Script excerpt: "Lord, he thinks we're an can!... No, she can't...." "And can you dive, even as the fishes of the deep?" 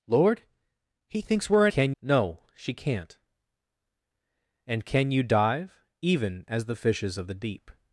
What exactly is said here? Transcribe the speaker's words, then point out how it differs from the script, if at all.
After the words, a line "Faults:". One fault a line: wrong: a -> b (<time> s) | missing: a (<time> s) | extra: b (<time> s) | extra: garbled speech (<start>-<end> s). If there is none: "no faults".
"Lord, he thinks we're an can!... No, she can't...." "And can you dive, even as the fishes of the deep?"
Faults:
no faults